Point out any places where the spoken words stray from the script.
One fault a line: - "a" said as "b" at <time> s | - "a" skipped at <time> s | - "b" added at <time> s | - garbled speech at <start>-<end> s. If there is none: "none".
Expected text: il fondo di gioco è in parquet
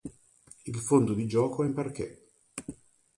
none